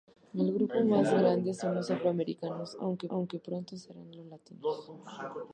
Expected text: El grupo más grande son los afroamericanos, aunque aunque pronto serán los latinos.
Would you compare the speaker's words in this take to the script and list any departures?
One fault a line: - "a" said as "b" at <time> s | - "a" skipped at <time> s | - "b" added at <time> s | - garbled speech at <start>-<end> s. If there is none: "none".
none